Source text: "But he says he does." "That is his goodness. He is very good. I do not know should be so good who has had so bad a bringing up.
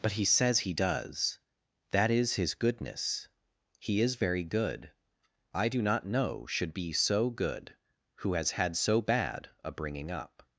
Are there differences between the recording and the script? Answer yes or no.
no